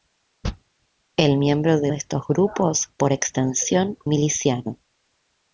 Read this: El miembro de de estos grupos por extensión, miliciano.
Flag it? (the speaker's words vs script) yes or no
no